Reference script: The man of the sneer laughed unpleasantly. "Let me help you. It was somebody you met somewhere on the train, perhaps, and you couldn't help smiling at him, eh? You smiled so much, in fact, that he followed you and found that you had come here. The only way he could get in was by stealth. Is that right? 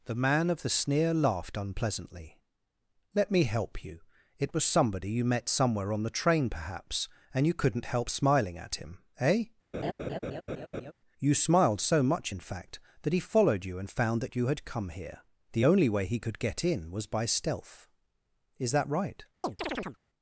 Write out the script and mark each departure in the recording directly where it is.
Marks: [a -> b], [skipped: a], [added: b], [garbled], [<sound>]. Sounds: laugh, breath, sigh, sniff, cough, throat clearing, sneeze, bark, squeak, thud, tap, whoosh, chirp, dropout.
The man of the sneer laughed unpleasantly. "Let me help you. It was somebody you met somewhere on the train, perhaps, and you couldn't help smiling at him, eh? [laugh] You smiled so much, in fact, that he followed you and found that you had come here. The only way he could get in was by stealth. Is that right? [chirp]